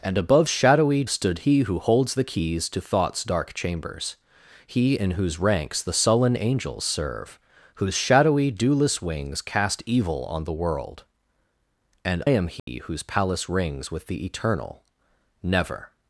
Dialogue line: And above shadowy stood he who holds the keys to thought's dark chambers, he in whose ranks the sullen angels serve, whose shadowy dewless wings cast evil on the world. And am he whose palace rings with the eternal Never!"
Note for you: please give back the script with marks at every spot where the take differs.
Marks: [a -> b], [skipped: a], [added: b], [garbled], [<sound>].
And above shadowy stood he who holds the keys to thought's dark chambers, he in whose ranks the sullen angels serve, whose shadowy dewless wings cast evil on the world. And am he [dropout] whose palace rings with the eternal Never!"